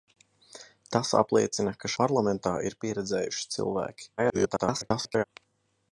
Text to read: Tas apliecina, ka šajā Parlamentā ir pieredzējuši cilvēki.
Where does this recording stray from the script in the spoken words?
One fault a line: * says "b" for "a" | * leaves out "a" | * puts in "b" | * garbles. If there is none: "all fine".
* leaves out "šajā"
* garbles